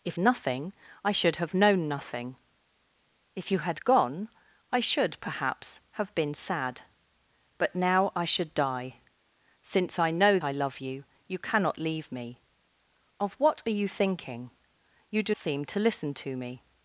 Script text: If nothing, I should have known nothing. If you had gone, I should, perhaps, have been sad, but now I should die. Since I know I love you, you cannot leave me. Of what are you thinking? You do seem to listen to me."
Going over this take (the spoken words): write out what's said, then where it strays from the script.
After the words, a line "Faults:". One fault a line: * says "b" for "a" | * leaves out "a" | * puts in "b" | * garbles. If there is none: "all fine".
If nothing, I should have known nothing. If you had gone, I should, perhaps, have been sad, but now I should die. Since I know I love you, you cannot leave me. Of what are you thinking? You do seem to listen to me."
Faults:
all fine